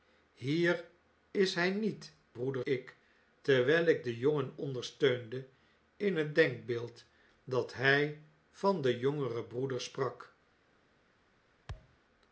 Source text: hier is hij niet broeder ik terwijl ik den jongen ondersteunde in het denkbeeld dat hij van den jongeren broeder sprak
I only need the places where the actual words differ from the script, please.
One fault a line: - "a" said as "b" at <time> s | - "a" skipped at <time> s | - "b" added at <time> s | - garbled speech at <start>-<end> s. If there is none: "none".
none